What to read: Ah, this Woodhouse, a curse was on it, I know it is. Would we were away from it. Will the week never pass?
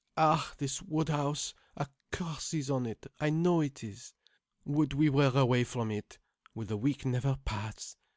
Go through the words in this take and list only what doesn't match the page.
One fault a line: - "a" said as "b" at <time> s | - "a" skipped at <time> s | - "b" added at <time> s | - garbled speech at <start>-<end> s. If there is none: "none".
- "was" said as "is" at 2.5 s